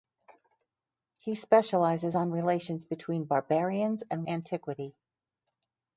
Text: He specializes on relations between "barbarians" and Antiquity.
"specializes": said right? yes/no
yes